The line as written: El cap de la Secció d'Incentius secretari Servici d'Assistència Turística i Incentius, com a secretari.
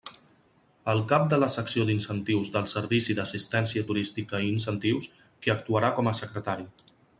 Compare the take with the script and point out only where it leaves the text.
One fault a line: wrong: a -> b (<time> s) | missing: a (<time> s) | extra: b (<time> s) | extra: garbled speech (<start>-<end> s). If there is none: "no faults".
wrong: secretari -> del (2.5 s)
extra: qui actuarà (5.4 s)